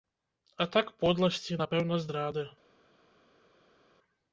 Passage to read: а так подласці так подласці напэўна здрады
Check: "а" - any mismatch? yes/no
no